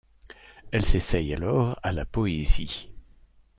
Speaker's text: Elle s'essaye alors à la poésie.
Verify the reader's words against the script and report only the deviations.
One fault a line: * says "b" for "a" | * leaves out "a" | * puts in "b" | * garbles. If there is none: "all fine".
all fine